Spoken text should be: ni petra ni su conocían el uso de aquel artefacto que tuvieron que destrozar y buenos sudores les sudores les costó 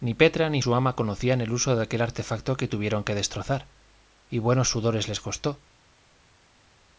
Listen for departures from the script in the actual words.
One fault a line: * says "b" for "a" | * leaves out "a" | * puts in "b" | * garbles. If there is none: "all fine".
* puts in "ama"
* leaves out "sudores les"